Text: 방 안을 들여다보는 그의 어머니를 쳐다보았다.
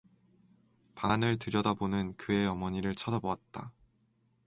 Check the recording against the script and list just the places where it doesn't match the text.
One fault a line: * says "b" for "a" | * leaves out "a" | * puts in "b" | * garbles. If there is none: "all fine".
all fine